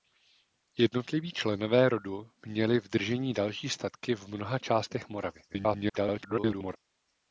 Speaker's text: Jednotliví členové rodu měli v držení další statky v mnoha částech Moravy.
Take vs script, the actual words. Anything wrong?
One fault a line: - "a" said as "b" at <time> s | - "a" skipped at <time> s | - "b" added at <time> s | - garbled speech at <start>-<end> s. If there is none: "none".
- garbled speech at 5.5-6.8 s